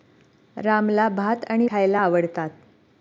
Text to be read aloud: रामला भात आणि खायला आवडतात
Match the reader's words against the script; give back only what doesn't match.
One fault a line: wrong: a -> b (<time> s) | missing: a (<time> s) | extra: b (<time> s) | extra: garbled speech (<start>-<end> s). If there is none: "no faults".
no faults